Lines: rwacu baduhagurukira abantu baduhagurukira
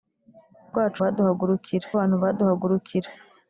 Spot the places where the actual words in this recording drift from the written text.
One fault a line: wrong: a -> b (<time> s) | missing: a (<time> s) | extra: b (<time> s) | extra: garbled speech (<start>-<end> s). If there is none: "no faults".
no faults